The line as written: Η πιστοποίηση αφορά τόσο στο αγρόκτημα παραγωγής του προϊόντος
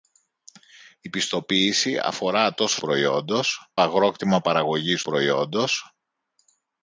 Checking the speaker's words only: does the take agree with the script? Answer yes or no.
no